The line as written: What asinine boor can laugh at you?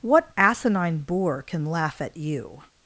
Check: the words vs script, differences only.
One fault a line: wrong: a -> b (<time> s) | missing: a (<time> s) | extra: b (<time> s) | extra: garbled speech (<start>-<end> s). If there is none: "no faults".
no faults